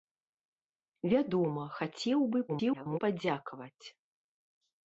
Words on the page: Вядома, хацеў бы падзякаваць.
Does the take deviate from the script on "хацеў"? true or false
false